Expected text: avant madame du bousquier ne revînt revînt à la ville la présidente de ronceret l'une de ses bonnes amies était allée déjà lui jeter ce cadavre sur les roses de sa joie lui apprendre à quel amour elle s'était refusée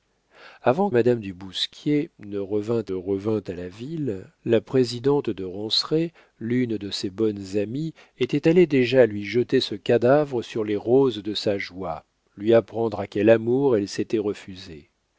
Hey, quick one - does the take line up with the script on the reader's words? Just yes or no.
yes